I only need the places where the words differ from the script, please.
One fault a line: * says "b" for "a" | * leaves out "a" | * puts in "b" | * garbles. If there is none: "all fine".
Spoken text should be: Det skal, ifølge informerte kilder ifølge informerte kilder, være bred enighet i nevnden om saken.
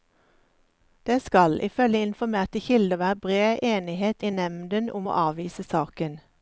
* leaves out "ifølge informerte kilder"
* puts in "å avvise"